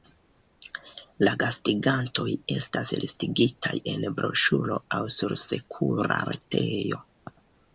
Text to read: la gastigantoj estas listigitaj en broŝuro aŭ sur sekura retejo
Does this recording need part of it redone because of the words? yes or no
no